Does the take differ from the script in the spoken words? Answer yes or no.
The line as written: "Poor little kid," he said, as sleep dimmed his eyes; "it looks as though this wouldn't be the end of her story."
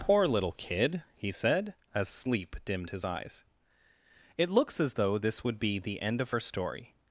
yes